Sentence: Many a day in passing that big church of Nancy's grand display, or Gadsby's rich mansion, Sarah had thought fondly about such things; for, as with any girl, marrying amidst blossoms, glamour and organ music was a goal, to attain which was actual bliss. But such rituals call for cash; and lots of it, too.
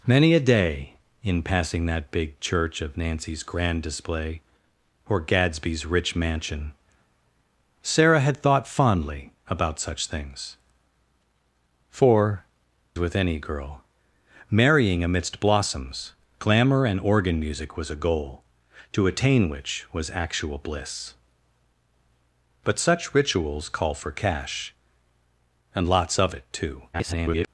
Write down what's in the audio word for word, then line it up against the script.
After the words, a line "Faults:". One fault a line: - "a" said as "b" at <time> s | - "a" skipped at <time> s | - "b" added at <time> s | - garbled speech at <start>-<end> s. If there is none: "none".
Many a day in passing that big church of Nancy's grand display, or Gadsby's rich mansion, Sarah had thought fondly about such things; for, with any girl, marrying amidst blossoms, glamour and organ music was a goal, to attain which was actual bliss. But such rituals call for cash; and lots of it, too. [garbled]
Faults:
- "as" skipped at 12.4 s
- garbled speech at 26.9-27.5 s